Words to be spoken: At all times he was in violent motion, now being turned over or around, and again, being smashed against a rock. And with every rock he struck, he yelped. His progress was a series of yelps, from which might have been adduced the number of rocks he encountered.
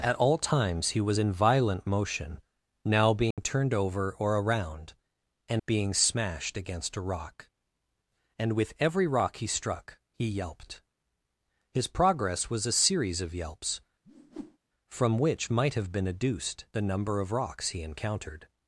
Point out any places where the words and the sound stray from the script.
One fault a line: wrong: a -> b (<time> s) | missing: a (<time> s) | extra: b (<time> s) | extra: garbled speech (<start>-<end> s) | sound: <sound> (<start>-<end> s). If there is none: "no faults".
sound: dropout (3.3-3.4 s)
missing: again (5.6 s)
sound: whoosh (14.0-14.6 s)